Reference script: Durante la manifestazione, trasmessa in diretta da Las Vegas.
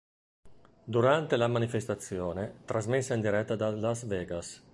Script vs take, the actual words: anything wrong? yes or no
no